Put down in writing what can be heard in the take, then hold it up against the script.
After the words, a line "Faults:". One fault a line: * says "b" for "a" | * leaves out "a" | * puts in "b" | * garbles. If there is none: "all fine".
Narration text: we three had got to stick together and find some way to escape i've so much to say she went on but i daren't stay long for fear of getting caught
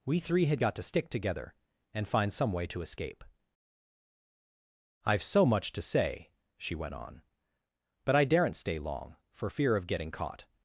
we three had got to stick together and find some way to escape i've so much to say she went on but i daren't stay long for fear of getting caught
Faults:
all fine